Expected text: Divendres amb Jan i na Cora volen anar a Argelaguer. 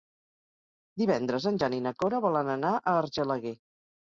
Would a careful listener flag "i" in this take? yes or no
no